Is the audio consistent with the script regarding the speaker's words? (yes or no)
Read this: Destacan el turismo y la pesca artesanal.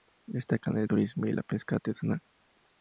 yes